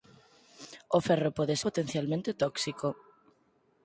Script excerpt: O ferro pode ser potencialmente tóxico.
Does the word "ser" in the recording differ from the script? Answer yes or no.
yes